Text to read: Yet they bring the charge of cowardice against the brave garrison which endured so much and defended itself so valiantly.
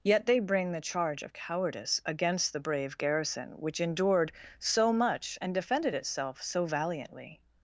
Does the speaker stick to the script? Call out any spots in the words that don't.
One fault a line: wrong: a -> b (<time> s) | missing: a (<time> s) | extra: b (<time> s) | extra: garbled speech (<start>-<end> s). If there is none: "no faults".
no faults